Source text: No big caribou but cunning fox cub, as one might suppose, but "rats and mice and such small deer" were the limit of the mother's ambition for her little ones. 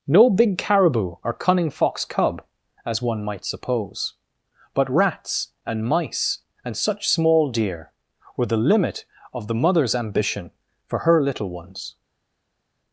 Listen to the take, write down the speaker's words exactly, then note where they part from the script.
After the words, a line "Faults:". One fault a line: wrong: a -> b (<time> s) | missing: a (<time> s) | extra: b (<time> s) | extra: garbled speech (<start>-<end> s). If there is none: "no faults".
No big caribou or cunning fox cub, as one might suppose, but "rats and mice and such small deer" were the limit of the mother's ambition for her little ones.
Faults:
wrong: but -> or (1.2 s)